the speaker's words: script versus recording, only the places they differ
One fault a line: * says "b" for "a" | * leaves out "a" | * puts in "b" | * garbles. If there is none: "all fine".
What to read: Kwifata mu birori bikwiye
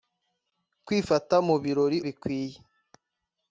all fine